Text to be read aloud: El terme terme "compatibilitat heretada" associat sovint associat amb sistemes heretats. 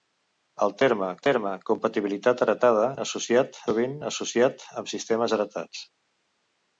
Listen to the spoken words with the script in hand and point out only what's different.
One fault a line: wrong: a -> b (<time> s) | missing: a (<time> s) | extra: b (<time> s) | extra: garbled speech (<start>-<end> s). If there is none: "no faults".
no faults